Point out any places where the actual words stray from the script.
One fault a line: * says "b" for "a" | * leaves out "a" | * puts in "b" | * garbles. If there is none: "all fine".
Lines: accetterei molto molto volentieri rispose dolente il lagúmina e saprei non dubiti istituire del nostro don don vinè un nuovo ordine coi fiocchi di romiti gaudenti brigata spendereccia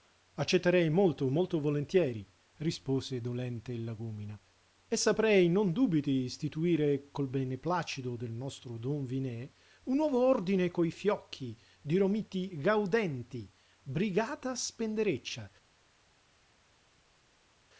* puts in "col beneplacito"
* leaves out "don"